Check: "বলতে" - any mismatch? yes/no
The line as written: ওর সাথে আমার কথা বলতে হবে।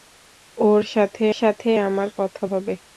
yes